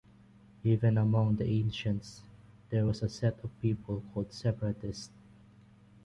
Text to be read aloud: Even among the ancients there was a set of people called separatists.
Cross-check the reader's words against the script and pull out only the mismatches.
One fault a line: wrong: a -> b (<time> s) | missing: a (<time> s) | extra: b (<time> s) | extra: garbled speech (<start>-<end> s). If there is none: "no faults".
no faults